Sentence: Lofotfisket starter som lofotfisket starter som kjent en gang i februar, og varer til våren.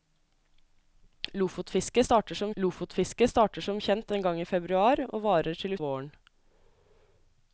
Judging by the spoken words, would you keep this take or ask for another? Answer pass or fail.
pass